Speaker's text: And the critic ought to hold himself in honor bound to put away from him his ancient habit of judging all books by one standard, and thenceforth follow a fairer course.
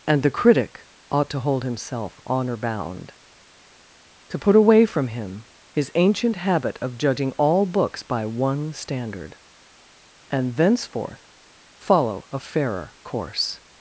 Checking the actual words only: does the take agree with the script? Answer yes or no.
no